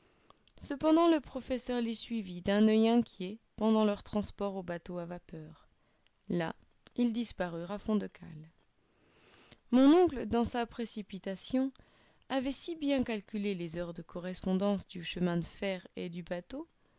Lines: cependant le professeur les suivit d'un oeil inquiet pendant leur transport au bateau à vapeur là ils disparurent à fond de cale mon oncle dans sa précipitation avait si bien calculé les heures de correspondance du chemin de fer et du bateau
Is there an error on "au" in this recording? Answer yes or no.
no